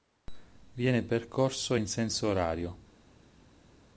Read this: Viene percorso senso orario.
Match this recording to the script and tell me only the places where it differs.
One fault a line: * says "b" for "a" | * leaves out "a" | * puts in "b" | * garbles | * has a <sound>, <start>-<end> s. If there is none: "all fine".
* puts in "in"